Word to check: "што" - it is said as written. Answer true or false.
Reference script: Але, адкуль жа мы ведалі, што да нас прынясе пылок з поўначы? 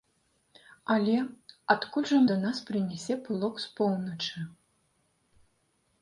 false